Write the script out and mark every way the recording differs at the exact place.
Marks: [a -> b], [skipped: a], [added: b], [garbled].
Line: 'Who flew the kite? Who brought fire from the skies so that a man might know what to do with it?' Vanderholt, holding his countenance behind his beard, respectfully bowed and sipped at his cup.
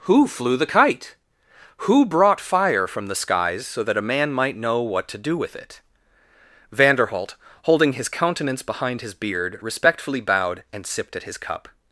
'Who flew the kite? Who brought fire from the skies so that a man might know what to do with it?' Vanderholt, holding his countenance behind his beard, respectfully bowed and sipped at his cup.